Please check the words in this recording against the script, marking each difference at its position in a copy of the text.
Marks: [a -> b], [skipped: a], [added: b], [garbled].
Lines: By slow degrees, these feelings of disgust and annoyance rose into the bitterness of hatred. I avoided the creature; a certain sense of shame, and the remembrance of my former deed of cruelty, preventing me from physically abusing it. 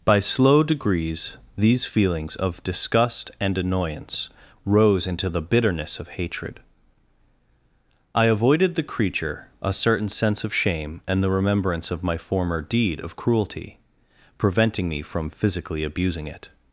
By slow degrees, these feelings of disgust and annoyance rose into the bitterness of hatred. I avoided the creature; a certain sense of shame, and the remembrance of my former deed of cruelty, preventing me from physically abusing it.